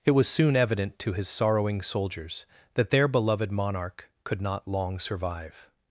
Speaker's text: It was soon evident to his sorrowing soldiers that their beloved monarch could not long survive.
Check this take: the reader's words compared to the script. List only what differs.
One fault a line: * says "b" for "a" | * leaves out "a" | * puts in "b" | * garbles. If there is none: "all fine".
all fine